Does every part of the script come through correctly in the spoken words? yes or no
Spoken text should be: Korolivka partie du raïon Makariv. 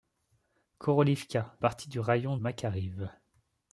yes